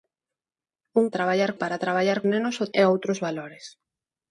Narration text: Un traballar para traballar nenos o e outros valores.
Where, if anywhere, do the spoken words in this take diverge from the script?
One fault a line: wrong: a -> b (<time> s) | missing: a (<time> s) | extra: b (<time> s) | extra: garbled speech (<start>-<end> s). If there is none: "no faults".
no faults